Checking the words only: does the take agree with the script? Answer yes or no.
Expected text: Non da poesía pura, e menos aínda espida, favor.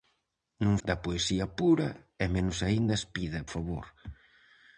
yes